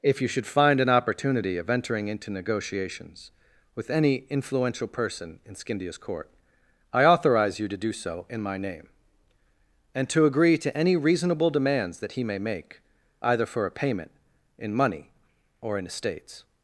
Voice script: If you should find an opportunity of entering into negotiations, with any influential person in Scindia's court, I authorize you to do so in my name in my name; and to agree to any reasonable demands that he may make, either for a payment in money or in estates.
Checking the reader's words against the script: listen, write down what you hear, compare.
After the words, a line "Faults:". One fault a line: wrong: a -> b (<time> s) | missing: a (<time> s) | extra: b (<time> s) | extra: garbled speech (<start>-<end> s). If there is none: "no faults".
If you should find an opportunity of entering into negotiations, with any influential person in Scindia's court, I authorize you to do so in my name; and to agree to any reasonable demands that he may make, either for a payment in money or in estates.
Faults:
missing: in my name (8.9 s)